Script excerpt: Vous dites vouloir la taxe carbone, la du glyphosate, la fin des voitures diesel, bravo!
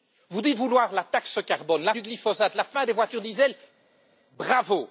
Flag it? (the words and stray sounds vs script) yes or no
no